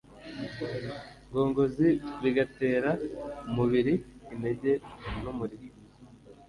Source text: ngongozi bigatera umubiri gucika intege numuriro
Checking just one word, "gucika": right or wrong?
wrong